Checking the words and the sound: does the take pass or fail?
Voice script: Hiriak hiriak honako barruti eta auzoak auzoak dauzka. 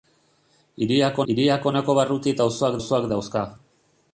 pass